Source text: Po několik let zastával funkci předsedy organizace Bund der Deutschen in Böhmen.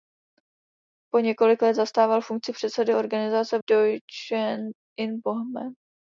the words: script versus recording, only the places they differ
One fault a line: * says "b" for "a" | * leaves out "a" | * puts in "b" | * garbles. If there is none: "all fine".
* leaves out "Bund der"